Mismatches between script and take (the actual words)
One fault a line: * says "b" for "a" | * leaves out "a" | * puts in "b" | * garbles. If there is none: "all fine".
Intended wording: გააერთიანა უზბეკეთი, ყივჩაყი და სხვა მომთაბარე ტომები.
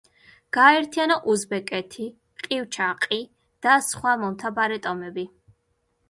all fine